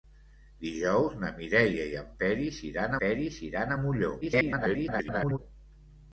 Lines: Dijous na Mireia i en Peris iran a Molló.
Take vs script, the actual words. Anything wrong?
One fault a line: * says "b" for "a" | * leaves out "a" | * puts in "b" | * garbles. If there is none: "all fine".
* puts in "Peris iran"
* garbles